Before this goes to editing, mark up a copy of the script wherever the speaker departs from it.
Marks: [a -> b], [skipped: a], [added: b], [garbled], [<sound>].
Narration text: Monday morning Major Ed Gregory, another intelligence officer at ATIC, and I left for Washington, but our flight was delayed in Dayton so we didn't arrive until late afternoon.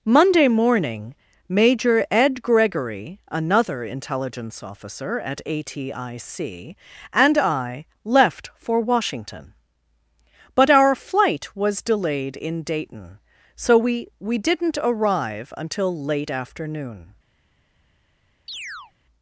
Monday morning Major Ed Gregory, another intelligence officer at ATIC, and I left for Washington, but our flight was delayed in Dayton so we [added: we] didn't arrive until late afternoon. [chirp]